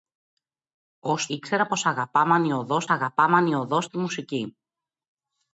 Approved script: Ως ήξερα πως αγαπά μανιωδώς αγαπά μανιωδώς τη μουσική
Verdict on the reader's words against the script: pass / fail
pass